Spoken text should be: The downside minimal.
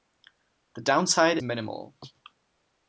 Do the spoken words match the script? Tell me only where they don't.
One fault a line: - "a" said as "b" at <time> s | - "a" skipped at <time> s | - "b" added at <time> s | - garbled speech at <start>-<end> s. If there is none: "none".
none